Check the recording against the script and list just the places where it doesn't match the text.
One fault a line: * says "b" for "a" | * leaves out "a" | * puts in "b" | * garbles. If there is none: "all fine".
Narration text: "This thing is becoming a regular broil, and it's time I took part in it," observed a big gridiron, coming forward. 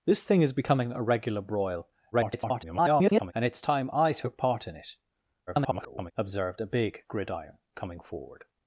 * garbles
* garbles